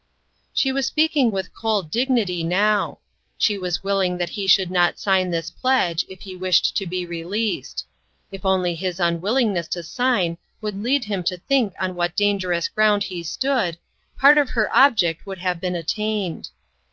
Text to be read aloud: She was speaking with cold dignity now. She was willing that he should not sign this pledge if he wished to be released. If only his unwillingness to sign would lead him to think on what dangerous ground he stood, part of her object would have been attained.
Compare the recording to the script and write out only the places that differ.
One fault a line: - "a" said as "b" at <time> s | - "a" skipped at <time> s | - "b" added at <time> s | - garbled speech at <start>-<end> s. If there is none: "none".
none